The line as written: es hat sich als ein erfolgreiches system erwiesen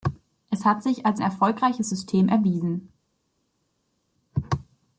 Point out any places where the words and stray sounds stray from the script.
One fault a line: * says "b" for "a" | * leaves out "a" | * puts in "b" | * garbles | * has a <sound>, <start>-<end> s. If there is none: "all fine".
* leaves out "ein"